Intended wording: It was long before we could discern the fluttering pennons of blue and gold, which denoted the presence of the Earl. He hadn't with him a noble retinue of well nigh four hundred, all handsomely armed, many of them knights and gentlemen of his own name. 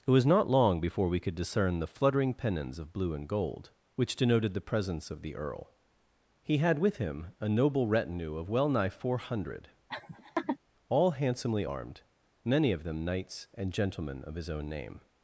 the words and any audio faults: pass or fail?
fail